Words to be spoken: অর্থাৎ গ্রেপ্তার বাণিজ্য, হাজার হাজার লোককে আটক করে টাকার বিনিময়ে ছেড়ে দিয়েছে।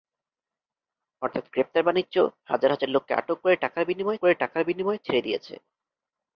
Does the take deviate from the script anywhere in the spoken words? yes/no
yes